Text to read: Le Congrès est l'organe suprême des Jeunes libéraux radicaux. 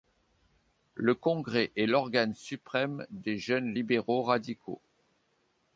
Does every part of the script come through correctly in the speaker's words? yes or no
yes